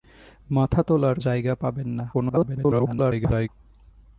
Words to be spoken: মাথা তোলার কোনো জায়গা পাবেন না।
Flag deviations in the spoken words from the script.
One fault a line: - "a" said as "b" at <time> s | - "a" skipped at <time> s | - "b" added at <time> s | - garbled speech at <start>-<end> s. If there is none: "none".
- "কোনো" skipped at 1.2 s
- garbled speech at 2.1-3.5 s